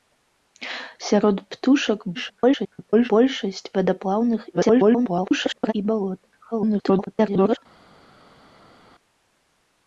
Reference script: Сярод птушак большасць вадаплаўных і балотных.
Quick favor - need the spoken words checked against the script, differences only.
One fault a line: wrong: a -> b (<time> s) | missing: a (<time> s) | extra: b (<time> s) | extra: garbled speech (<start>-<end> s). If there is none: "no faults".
extra: garbled speech (2.1-3.1 s)
extra: garbled speech (4.5-5.7 s)
extra: garbled speech (6.5-7.6 s)